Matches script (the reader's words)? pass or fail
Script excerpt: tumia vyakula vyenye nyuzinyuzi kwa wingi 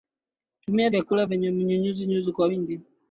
pass